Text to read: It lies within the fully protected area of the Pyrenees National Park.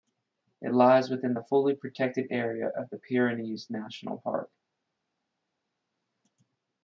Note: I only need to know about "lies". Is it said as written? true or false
true